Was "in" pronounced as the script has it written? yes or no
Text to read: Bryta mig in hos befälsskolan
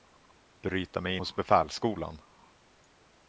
no